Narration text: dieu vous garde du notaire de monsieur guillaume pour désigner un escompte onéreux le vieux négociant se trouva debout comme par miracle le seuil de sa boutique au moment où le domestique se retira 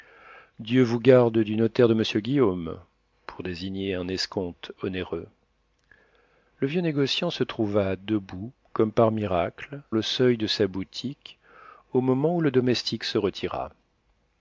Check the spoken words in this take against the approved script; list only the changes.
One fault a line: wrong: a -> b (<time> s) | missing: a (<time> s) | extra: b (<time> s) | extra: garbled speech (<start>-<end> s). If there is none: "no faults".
no faults